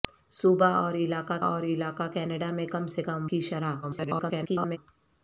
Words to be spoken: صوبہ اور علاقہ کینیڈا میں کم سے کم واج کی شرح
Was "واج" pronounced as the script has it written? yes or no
no